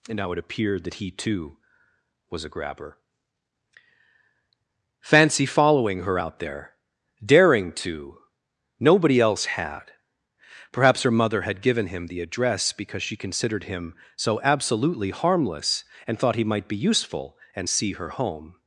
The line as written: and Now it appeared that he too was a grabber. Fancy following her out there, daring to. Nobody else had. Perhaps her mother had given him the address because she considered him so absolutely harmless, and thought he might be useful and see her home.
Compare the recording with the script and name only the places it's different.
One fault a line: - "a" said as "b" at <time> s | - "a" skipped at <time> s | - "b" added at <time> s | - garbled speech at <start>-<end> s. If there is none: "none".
none